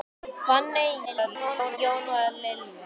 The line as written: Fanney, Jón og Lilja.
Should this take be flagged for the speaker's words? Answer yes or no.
yes